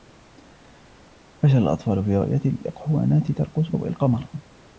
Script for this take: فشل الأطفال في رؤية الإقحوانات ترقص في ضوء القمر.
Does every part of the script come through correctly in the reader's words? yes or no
no